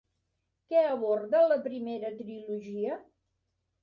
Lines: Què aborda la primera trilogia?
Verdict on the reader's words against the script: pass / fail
pass